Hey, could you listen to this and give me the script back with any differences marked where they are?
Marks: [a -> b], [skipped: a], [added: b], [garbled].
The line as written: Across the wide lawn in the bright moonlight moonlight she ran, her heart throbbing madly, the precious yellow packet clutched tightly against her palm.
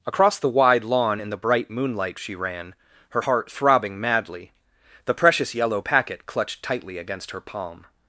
Across the wide lawn in the bright moonlight [skipped: moonlight] she ran, her heart throbbing madly, the precious yellow packet clutched tightly against her palm.